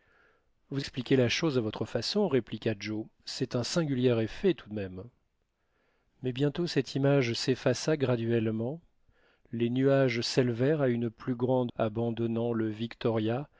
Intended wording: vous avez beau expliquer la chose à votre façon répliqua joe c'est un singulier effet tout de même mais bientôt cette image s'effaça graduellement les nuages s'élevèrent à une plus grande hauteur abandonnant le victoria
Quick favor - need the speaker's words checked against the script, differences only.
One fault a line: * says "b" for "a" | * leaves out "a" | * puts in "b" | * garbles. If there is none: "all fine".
* leaves out "avez beau"
* leaves out "hauteur"